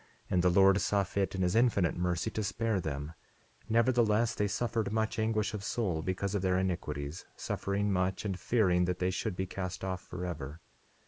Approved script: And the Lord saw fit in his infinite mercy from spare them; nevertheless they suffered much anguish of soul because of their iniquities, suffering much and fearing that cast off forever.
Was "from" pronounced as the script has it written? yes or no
no